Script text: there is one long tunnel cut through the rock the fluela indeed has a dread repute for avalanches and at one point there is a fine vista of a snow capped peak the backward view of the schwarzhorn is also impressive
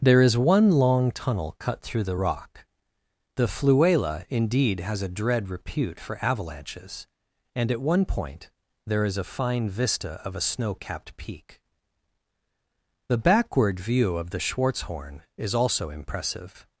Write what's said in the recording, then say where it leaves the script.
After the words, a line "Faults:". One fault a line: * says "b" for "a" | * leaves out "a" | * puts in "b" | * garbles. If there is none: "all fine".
there is one long tunnel cut through the rock the fluela indeed has a dread repute for avalanches and at one point there is a fine vista of a snow capped peak the backward view of the schwarzhorn is also impressive
Faults:
all fine